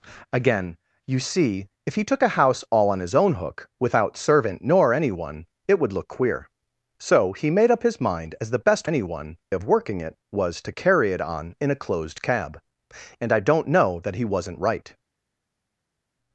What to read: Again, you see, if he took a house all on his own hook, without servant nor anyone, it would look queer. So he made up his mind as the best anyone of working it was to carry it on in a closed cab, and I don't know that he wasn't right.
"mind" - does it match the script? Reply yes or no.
yes